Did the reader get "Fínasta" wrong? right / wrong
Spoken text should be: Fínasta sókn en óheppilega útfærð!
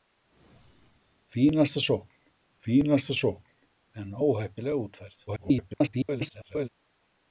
right